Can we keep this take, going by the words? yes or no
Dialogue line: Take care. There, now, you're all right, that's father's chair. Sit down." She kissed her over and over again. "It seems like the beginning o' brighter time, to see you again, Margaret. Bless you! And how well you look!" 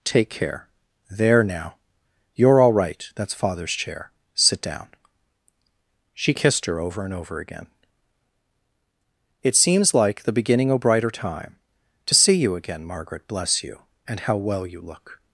yes